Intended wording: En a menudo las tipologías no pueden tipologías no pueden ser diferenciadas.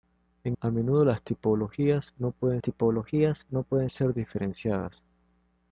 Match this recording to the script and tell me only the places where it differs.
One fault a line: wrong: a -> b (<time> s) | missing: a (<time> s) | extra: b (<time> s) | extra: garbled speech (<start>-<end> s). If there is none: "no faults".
no faults